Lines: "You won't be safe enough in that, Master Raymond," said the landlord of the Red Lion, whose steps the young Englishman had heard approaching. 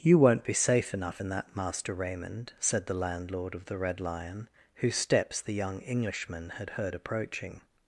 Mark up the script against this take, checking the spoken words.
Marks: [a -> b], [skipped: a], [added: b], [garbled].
"You won't be safe enough in that, Master Raymond," said the landlord of the Red Lion, whose steps the young Englishman had heard approaching.